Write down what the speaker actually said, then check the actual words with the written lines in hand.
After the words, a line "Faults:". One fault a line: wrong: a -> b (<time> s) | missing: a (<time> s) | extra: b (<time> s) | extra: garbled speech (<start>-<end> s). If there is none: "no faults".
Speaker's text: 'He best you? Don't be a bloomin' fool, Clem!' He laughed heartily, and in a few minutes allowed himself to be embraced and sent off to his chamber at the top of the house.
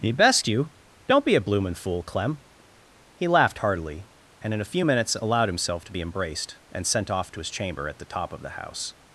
'He best you? Don't be a bloomin' fool, Clem!' He laughed heartily, and in a few minutes allowed himself to be embraced and sent off to his chamber at the top of the house.
Faults:
no faults